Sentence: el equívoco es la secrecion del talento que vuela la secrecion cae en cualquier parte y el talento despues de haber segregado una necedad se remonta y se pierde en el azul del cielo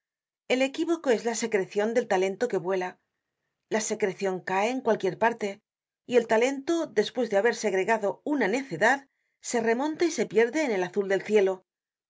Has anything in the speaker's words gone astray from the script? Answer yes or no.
no